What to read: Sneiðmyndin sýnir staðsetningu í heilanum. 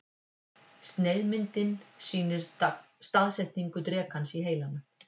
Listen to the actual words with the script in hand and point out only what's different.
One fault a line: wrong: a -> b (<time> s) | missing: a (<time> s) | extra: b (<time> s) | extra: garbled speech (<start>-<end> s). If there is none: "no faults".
extra: drekans (3.9 s)